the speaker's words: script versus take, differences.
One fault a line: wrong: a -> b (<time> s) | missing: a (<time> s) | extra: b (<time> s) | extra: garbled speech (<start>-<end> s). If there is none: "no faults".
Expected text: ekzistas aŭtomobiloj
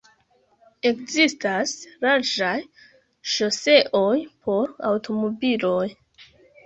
extra: larĝaj ŝoseoj por (2.0 s)